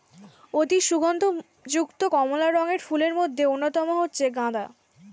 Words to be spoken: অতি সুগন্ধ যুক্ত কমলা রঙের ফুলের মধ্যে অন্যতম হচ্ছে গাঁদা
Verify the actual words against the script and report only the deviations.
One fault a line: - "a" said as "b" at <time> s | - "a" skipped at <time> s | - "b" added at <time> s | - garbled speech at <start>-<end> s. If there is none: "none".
none